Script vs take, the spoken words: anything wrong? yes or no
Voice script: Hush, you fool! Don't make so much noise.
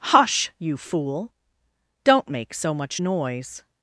no